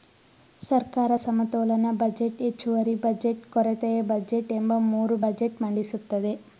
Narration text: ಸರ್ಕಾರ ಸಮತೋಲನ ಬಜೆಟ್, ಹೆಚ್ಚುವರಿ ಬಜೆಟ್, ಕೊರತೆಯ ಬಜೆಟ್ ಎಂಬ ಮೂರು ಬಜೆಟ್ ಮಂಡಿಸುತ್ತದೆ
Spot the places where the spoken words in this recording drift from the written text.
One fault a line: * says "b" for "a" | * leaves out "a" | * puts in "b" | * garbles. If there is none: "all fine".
all fine